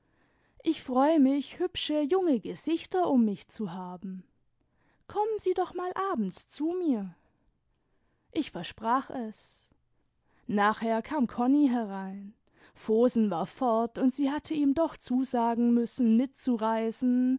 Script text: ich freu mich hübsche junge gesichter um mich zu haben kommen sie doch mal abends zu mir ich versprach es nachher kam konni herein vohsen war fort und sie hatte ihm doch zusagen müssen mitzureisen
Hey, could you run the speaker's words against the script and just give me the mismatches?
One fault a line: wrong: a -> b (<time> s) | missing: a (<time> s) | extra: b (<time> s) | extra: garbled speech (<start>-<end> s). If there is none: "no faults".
no faults